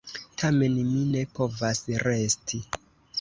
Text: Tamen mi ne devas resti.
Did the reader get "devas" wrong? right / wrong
wrong